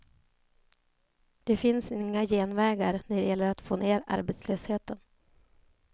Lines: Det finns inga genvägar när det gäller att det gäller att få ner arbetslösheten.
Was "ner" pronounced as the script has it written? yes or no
yes